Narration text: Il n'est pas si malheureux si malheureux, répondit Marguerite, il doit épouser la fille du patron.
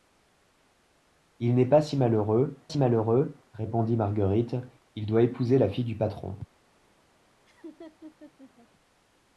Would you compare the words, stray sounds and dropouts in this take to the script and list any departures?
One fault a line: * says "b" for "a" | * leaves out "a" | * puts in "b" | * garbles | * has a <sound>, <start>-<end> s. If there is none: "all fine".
* has a laugh, 7.5-8.7 s